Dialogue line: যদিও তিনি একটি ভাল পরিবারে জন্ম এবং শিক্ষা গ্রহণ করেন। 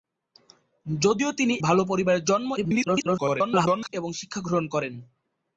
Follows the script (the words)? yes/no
no